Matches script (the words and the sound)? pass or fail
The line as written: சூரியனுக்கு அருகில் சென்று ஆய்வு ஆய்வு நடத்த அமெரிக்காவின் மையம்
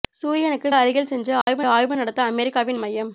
fail